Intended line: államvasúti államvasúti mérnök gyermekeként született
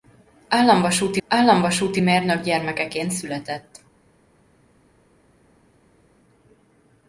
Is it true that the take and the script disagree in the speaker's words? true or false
false